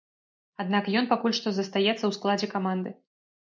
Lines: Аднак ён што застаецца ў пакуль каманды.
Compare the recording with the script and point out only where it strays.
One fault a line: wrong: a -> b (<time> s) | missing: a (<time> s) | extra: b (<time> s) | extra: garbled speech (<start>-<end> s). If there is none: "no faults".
extra: пакуль (1.1 s)
wrong: пакуль -> складзе (2.2 s)